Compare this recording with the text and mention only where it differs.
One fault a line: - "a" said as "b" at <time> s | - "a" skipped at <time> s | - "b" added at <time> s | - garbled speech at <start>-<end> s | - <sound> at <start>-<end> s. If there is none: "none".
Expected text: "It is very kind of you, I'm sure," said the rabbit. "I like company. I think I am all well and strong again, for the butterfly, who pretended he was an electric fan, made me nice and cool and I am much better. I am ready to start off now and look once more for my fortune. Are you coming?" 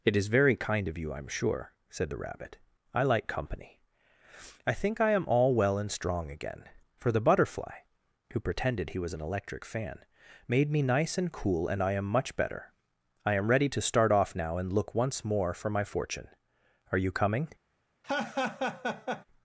- laugh at 18.0-19.3 s